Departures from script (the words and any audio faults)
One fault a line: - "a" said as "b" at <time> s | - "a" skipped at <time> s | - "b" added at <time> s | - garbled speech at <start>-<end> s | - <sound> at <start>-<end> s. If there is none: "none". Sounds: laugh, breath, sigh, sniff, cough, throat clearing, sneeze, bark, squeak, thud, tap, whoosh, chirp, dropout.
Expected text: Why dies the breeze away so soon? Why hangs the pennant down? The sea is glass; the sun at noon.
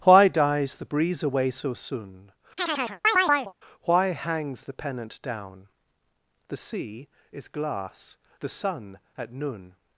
- chirp at 2.6-3.5 s